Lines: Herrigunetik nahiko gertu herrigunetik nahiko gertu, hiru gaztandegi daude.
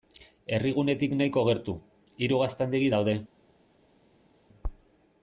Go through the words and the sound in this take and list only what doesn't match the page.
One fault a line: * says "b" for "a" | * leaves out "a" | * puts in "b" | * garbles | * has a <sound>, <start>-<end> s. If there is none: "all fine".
* leaves out "herrigunetik nahiko gertu"